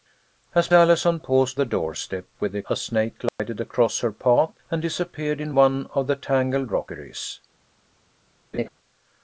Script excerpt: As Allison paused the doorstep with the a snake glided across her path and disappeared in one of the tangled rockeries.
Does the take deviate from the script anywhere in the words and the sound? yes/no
yes